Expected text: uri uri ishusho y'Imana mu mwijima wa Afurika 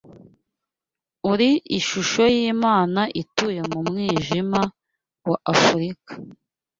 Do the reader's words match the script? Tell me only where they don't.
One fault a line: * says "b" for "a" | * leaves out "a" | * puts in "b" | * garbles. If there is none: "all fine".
* leaves out "uri"
* puts in "ituye"